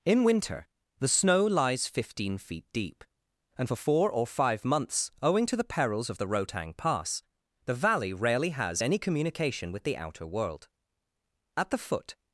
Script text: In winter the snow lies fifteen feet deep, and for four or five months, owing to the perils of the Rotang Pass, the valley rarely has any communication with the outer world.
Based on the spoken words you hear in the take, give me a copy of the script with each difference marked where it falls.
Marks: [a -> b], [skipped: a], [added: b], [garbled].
In winter the snow lies fifteen feet deep, and for four or five months, owing to the perils of the Rotang Pass, the valley rarely has any communication with the outer world. [added: At the foot]